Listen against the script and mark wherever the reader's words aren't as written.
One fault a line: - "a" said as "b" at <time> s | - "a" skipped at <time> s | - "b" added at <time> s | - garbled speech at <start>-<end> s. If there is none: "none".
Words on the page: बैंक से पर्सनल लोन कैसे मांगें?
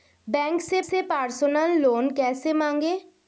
- "से" added at 0.8 s